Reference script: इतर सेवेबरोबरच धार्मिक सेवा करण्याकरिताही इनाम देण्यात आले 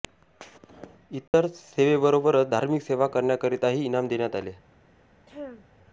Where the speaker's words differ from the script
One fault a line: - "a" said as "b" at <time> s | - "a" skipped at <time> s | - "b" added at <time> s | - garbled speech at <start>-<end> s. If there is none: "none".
none